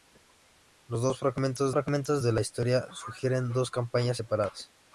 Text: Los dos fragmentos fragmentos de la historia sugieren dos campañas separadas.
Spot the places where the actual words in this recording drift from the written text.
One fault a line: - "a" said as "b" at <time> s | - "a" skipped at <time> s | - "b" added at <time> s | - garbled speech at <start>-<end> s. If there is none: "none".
none